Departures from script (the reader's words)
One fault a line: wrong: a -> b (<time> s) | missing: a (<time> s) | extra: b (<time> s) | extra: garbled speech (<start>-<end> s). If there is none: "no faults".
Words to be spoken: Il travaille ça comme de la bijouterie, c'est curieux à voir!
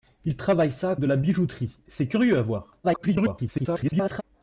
missing: comme (0.9 s)
extra: garbled speech (2.8-4.2 s)